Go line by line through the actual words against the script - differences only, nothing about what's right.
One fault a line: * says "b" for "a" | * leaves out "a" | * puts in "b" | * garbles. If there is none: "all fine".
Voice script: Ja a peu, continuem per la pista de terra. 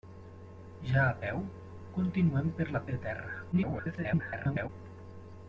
* leaves out "pista"
* garbles